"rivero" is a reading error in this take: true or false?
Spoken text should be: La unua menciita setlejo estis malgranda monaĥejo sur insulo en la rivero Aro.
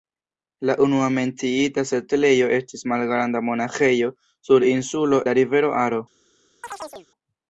false